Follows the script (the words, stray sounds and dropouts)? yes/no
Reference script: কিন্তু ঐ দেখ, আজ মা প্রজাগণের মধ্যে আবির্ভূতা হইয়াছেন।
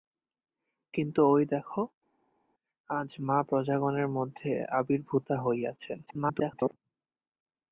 no